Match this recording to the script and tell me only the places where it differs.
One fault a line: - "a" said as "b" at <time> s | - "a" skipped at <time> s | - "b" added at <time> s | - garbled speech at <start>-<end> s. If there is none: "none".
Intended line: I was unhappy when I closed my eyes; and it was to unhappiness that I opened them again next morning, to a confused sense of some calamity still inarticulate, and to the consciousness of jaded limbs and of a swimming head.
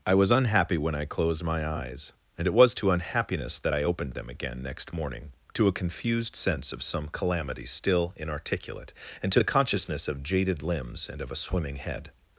none